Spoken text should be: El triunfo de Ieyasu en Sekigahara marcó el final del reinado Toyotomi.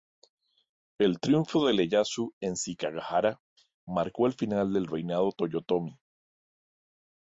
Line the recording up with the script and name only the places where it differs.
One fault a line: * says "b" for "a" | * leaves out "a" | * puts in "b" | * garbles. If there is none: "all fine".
all fine